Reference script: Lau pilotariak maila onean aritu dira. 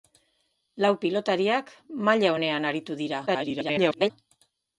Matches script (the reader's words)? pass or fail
fail